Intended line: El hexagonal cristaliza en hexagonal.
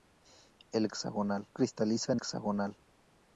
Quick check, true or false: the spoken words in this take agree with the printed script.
true